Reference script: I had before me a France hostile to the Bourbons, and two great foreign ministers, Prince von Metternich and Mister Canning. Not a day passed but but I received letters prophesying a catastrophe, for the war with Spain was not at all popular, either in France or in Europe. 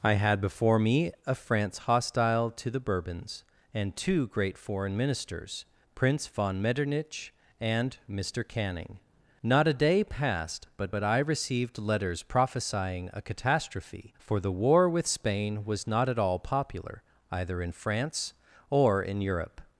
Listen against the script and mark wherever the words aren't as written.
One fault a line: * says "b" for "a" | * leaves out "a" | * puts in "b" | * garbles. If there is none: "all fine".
all fine